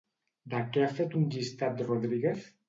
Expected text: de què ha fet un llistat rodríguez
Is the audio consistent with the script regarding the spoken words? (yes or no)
yes